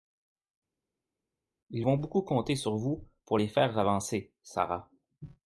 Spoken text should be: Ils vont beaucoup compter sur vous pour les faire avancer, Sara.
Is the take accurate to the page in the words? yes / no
yes